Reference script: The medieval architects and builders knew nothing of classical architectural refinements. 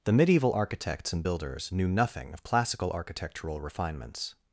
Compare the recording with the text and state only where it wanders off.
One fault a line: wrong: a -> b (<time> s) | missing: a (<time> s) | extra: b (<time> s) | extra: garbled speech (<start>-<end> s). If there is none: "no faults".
no faults